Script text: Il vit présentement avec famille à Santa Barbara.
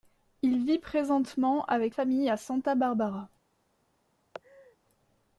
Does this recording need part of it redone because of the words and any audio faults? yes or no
yes